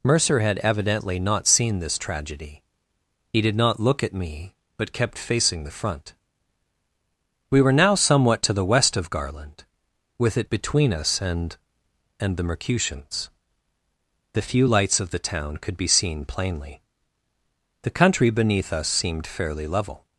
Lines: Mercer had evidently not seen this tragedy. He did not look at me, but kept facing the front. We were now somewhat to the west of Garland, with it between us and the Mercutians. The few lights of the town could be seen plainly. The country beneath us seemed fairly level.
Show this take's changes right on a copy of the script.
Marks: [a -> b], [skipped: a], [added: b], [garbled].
Mercer had evidently not seen this tragedy. He did not look at me, but kept facing the front. We were now somewhat to the west of Garland, with it between us and [added: and] the Mercutians. The few lights of the town could be seen plainly. The country beneath us seemed fairly level.